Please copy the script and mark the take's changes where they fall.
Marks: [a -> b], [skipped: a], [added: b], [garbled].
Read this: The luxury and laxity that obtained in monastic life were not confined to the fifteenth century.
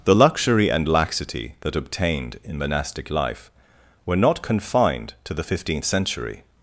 The luxury and laxity that obtained in monastic life were not confined to the fifteenth century.